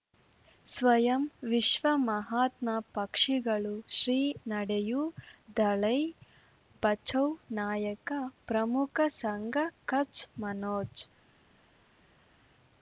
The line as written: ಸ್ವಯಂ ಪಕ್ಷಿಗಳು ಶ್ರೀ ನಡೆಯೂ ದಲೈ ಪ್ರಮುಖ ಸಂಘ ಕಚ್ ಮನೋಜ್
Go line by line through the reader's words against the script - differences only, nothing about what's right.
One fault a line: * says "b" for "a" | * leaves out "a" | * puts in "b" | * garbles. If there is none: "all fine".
* puts in "ವಿಶ್ವ ಮಹಾತ್ಮ"
* puts in "ಬಚೌ ನಾಯಕ"